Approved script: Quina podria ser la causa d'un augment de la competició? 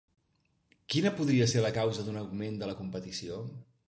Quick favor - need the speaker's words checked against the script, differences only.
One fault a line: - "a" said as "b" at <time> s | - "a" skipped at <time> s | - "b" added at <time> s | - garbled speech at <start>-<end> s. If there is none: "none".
none